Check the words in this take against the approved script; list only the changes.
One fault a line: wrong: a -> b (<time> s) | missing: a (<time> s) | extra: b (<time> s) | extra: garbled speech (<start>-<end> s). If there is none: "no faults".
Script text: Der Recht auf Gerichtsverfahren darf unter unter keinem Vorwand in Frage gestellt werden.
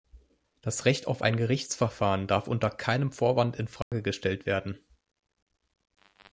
wrong: Der -> Das (0.6 s)
extra: ein (1.2 s)
missing: unter (2.7 s)